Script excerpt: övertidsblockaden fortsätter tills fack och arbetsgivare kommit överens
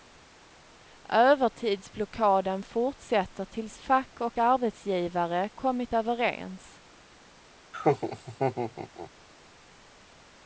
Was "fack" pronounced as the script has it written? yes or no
yes